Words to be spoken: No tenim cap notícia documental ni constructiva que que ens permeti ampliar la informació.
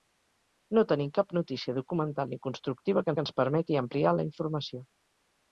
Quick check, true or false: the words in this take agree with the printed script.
true